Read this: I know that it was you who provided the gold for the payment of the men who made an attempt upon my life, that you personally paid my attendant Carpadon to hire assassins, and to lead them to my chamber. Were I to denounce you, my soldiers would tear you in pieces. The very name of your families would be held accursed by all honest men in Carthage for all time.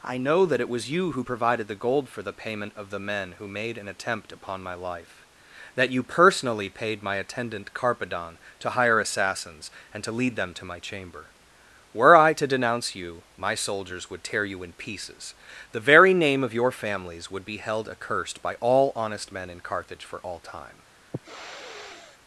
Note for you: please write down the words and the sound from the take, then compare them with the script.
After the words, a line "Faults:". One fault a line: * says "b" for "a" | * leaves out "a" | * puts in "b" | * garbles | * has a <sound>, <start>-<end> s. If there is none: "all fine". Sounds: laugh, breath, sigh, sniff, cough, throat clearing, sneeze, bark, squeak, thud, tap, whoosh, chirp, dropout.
I know that it was you who provided the gold for the payment of the men who made an attempt upon my life, that you personally paid my attendant Carpadon to hire assassins, and to lead them to my chamber. Were I to denounce you, my soldiers would tear you in pieces. The very name of your families would be held accursed by all honest men in Carthage for all time.
Faults:
* has a sniff, 21.1-22.2 s